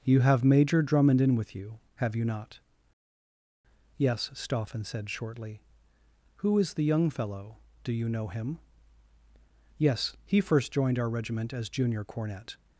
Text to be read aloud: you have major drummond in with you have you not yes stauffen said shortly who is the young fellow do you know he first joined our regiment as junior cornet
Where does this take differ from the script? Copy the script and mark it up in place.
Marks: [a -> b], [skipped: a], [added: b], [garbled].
you have major drummond in with you have you not yes stauffen said shortly who is the young fellow do you know [added: him yes] he first joined our regiment as junior cornet